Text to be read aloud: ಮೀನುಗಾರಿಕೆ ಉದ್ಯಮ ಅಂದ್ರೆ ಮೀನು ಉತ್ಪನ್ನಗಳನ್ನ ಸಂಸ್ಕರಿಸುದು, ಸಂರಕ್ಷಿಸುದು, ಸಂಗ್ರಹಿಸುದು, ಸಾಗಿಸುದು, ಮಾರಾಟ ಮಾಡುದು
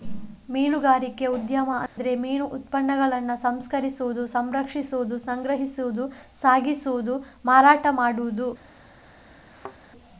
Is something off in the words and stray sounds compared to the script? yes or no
yes